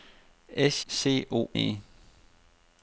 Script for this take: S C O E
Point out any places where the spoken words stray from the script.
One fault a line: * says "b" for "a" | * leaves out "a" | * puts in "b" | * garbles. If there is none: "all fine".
all fine